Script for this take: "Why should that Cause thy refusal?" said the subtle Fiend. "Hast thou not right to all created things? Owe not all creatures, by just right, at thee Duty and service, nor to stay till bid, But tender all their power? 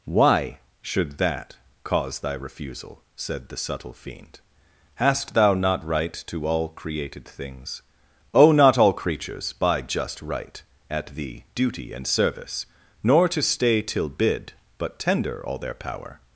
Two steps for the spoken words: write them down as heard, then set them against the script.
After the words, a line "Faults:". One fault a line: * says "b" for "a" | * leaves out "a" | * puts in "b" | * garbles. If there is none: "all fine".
"Why should that Cause thy refusal?" said the subtle Fiend. "Hast thou not right to all created things? Owe not all creatures, by just right, at thee Duty and service, nor to stay till bid, But tender all their power?
Faults:
all fine